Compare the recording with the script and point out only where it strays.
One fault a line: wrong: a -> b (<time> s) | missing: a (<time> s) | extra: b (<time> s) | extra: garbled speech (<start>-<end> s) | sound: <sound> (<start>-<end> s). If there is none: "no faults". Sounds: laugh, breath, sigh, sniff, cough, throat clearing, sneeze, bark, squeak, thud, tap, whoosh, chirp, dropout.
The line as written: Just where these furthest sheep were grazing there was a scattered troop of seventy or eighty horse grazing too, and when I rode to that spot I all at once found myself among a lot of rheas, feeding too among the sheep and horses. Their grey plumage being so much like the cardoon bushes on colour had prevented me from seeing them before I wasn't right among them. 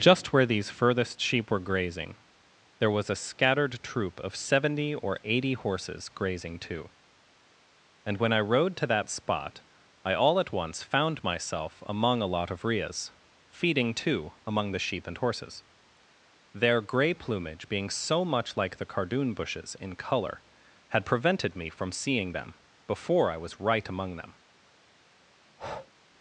wrong: horse -> horses (5.5 s)
wrong: on -> in (19.8 s)
wrong: wasn't -> was (23.4 s)
sound: breath (25.4-25.9 s)